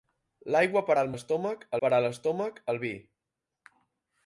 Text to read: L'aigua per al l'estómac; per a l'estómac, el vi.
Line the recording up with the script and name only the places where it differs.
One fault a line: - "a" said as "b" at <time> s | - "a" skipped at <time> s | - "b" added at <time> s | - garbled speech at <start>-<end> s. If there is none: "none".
none